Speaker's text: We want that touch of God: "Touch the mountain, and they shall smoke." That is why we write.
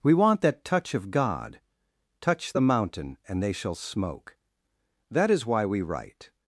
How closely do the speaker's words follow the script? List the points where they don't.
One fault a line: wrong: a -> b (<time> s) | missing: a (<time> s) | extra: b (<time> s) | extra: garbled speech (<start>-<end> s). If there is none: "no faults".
no faults